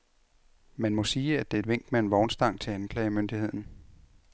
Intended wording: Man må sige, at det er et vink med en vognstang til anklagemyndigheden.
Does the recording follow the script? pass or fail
pass